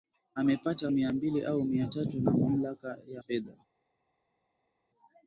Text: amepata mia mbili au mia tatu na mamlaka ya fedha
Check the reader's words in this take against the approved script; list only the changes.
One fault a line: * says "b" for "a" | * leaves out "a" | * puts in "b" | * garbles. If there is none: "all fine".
all fine